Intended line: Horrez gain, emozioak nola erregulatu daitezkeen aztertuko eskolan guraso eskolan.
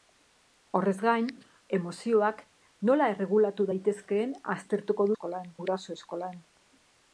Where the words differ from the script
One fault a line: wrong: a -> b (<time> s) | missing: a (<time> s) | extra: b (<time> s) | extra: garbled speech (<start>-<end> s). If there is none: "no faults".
no faults